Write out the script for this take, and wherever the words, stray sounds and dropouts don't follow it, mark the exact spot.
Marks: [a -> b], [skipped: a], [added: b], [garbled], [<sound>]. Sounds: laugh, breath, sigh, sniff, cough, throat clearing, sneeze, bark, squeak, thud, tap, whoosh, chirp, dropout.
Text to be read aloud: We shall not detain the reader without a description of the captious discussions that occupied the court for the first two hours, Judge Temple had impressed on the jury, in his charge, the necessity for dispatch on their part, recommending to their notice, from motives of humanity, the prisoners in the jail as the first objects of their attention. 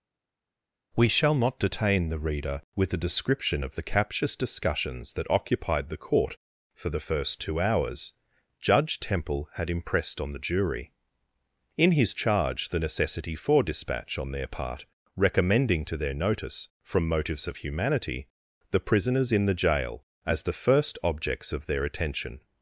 We shall not detain the reader [without -> with] a description of the captious discussions that occupied the court for the first two hours, Judge Temple had impressed on the jury, in his charge, the necessity for dispatch on their part, recommending to their notice, from motives of humanity, the prisoners in the jail as the first objects of their attention.